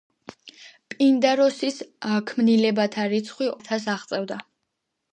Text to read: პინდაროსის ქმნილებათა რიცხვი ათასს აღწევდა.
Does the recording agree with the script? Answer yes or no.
yes